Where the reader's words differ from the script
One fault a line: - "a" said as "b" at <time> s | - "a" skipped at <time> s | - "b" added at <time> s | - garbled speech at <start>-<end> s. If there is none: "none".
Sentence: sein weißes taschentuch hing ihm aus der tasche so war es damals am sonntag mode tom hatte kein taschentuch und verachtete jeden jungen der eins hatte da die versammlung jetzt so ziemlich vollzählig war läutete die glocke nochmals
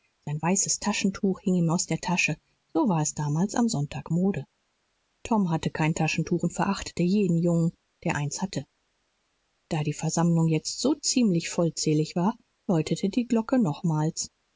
none